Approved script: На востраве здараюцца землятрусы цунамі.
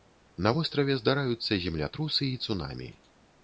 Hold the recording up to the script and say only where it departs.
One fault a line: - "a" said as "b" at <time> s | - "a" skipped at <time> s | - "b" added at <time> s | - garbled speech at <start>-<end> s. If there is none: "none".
- "і" added at 2.3 s